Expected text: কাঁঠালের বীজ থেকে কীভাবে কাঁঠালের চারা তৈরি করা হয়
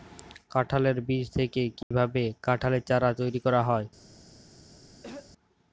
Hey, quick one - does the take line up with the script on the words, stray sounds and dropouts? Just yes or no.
no